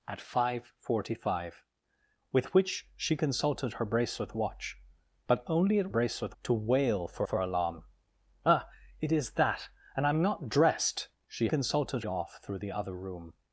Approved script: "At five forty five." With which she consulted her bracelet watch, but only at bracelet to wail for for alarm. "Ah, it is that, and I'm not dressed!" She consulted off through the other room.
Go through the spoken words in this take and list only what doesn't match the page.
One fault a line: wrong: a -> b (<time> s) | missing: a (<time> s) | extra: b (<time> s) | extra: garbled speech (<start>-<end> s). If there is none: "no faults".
no faults